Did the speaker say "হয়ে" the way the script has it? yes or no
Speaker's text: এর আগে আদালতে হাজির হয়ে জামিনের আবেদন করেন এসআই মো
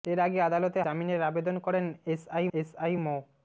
no